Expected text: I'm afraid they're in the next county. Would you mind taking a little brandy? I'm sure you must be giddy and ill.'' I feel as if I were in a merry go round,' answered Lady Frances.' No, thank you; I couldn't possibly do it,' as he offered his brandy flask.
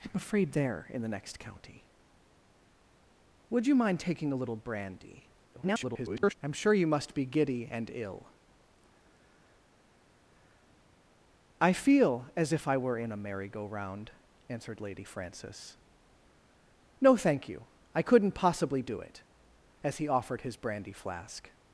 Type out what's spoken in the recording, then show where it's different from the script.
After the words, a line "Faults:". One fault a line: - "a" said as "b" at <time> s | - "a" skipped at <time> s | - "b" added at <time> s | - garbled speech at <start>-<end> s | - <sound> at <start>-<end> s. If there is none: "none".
I'm afraid they're in the next county. Would you mind taking a little brandy? [garbled] I'm sure you must be giddy and ill.'' I feel as if I were in a merry go round,' answered Lady Frances.' No, thank you; I couldn't possibly do it,' as he offered his brandy flask.
Faults:
- garbled speech at 5.5-6.3 s